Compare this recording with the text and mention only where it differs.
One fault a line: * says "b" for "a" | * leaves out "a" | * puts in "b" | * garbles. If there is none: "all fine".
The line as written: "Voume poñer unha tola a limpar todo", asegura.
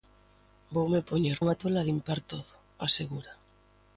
all fine